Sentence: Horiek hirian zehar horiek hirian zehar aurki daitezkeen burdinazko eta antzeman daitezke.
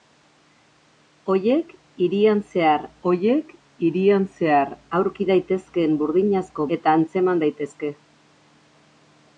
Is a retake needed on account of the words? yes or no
no